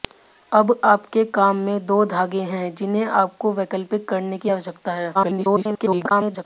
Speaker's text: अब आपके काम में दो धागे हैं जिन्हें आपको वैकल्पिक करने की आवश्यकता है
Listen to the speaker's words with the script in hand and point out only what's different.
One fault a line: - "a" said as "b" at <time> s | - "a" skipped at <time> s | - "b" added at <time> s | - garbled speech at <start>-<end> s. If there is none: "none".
- garbled speech at 5.1-6.4 s